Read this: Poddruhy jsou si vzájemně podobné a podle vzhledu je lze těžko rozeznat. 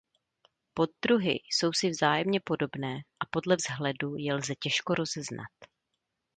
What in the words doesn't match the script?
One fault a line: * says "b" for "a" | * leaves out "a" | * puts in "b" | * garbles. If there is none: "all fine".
all fine